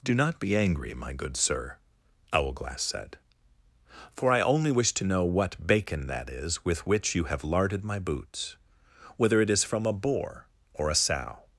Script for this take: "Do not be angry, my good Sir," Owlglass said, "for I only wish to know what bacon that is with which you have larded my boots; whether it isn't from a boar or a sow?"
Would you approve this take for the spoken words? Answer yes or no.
no